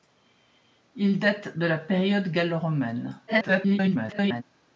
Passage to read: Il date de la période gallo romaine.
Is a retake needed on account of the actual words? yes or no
yes